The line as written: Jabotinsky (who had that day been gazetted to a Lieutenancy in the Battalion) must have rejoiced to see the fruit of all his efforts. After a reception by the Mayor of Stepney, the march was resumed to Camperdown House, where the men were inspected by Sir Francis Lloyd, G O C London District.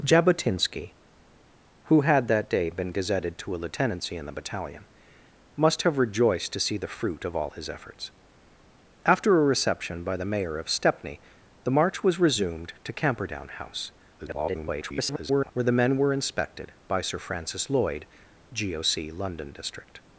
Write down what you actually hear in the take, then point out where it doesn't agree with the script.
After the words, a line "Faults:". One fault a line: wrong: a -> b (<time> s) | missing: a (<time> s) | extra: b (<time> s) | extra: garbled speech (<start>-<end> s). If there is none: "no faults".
Jabotinsky (who had that day been gazetted to a Lieutenancy in the Battalion) must have rejoiced to see the fruit of all his efforts. After a reception by the Mayor of Stepney, the march was resumed to Camperdown House, [garbled] where the men were inspected by Sir Francis Lloyd, G O C London District.
Faults:
extra: garbled speech (14.2-15.5 s)